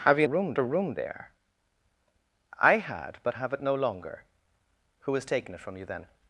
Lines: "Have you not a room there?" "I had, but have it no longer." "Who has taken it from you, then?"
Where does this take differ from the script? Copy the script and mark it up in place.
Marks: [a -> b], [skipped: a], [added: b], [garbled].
"Have you [not -> room] a room there?" "I had, but have it no longer." "Who has taken it from you, then?"